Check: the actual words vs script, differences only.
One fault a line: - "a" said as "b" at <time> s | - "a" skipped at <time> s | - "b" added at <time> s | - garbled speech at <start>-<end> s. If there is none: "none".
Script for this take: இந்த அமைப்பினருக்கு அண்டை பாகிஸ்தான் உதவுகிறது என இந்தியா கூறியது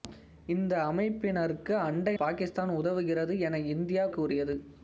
none